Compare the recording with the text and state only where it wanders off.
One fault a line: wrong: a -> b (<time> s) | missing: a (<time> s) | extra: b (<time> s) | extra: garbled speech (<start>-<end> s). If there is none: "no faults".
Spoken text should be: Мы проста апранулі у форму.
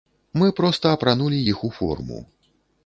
extra: іх (1.5 s)